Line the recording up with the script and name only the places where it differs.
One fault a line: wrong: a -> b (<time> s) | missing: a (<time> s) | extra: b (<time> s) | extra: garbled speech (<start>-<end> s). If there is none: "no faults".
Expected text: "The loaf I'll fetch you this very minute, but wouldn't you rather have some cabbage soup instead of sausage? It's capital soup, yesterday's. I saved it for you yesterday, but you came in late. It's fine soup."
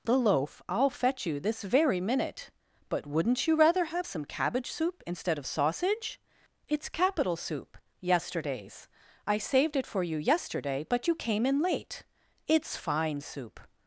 no faults